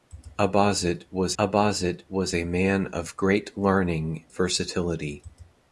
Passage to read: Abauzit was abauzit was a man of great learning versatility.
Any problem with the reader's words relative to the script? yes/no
no